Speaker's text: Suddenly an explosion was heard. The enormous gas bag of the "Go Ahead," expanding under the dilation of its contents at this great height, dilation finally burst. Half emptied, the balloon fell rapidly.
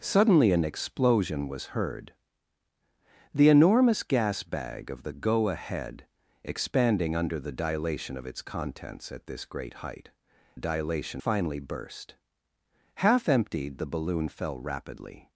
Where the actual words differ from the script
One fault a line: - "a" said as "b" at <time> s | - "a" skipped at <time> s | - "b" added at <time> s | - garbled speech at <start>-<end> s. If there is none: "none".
none